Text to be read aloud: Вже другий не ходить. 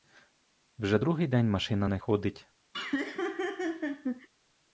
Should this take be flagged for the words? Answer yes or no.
yes